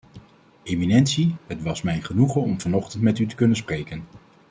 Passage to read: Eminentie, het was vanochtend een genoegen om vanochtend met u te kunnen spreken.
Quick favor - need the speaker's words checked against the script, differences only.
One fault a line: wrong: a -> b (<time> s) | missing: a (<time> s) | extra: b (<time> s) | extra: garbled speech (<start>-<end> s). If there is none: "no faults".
wrong: vanochtend -> mij (1.8 s)